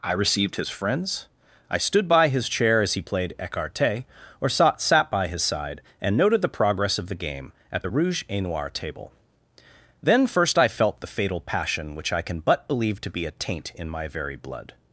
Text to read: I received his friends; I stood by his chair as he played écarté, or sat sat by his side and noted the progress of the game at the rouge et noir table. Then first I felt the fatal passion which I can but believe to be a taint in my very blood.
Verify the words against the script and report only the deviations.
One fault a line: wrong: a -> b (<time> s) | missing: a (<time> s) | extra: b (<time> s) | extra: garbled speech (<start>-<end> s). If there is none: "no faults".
no faults